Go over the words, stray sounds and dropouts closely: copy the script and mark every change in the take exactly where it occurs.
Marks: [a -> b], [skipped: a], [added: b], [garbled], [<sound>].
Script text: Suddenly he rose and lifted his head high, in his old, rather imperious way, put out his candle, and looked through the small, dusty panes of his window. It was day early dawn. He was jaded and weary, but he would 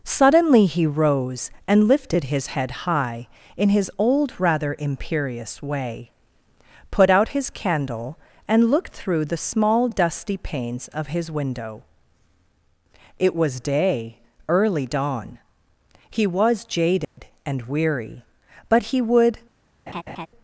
Suddenly he rose and lifted his head high, in his old, rather imperious way, put out his candle, and looked through the small, dusty panes of his window. It was day early dawn. He was jaded [dropout] and weary, but he would [laugh]